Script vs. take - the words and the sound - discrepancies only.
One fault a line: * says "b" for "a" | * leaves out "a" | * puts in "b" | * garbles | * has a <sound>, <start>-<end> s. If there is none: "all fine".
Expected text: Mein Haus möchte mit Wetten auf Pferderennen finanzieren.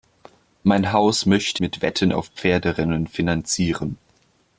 all fine